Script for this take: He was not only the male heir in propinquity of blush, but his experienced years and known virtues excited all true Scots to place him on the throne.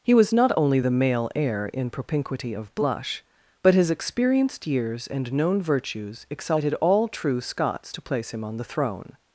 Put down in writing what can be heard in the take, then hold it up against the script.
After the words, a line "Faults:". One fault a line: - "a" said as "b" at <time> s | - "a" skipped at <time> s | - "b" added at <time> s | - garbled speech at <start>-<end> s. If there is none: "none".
He was not only the male heir in propinquity of blush, but his experienced years and known virtues excited all true Scots to place him on the throne.
Faults:
none